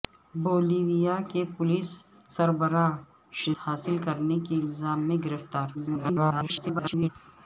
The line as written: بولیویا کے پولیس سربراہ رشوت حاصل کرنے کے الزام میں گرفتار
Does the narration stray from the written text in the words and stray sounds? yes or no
yes